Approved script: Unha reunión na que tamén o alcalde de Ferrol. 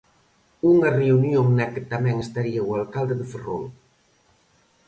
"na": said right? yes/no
yes